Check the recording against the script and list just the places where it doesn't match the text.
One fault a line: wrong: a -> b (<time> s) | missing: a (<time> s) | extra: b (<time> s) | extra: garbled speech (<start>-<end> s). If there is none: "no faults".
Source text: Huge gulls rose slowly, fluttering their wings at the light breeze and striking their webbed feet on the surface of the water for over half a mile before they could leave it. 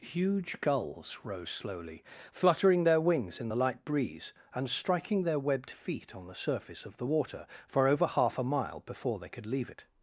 wrong: at -> in (3.4 s)